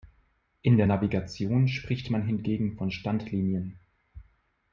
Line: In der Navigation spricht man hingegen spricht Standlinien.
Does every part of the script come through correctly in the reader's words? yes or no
no